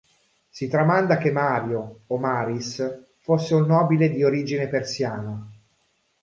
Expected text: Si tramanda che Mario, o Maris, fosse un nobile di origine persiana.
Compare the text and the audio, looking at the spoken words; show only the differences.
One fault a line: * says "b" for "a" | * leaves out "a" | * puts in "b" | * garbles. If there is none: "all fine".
all fine